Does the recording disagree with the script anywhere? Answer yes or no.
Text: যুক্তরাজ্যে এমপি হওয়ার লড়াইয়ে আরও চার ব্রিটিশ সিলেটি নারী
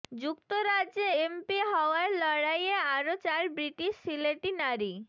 no